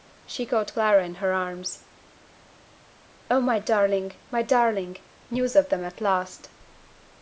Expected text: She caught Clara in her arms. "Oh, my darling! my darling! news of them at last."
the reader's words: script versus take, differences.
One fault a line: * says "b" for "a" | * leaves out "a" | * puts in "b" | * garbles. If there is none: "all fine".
all fine